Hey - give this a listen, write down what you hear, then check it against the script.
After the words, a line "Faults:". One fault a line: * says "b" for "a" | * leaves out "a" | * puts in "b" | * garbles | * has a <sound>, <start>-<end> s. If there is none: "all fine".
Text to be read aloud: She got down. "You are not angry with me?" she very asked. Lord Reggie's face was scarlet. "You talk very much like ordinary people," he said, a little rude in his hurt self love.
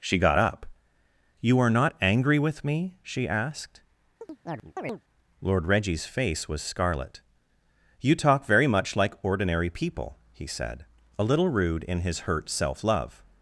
She got up. "You are not angry with me?" she asked. Lord Reggie's face was scarlet. "You talk very much like ordinary people," he said, a little rude in his hurt self love.
Faults:
* says "up" for "down"
* leaves out "very"
* has a chirp, 4.2-5.0 s